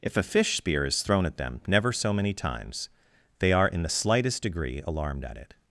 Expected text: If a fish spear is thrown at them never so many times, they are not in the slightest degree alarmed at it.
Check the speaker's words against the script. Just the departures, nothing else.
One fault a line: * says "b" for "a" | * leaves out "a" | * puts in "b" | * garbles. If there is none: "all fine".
* leaves out "not"